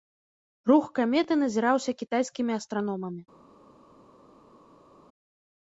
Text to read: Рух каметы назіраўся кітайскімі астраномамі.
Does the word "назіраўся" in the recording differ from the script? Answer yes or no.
no